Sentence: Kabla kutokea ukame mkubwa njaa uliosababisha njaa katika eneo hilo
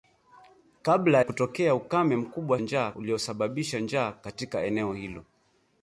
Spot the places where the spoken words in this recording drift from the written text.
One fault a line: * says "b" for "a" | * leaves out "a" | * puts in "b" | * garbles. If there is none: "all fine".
all fine